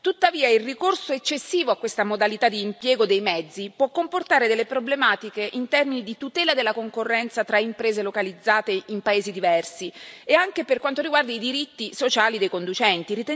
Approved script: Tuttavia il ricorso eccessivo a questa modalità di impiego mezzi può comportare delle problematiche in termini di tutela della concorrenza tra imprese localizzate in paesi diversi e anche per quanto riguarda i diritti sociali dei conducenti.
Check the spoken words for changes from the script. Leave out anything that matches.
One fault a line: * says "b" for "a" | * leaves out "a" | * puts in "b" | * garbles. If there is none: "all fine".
* puts in "dei"